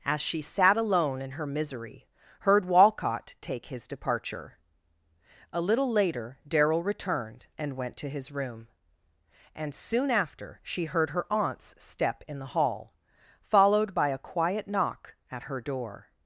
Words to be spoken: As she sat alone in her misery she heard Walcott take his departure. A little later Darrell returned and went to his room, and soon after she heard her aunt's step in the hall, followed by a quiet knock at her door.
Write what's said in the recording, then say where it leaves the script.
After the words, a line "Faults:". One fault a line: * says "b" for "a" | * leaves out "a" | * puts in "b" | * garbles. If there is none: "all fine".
As she sat alone in her misery heard Walcott take his departure. A little later Darrell returned and went to his room, and soon after she heard her aunt's step in the hall, followed by a quiet knock at her door.
Faults:
* leaves out "she"